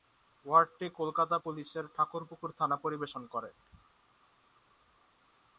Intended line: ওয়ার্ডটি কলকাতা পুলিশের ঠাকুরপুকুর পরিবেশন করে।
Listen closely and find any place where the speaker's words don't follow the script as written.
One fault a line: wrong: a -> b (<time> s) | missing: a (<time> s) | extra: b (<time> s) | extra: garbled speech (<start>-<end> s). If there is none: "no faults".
extra: থানা (2.6 s)